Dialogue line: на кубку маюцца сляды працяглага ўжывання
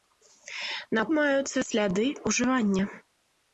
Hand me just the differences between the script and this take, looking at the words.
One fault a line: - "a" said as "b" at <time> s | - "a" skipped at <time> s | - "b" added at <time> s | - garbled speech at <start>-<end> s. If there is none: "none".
- "кубку" skipped at 1.0 s
- "працяглага" skipped at 2.1 s